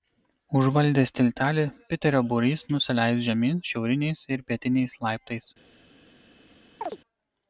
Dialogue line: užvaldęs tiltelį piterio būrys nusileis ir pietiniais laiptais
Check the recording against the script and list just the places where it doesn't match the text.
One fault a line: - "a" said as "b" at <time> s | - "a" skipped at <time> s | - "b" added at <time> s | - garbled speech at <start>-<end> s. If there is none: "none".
- "žemyn šiauriniais" added at 3.2 s